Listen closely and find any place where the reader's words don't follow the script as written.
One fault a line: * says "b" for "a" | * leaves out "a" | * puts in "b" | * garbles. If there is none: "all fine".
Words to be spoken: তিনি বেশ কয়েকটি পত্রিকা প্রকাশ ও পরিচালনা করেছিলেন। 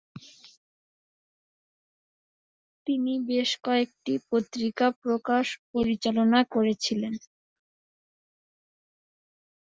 * leaves out "ও"